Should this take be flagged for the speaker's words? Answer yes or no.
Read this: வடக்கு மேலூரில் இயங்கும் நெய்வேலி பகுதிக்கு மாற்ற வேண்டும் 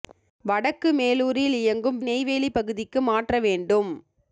no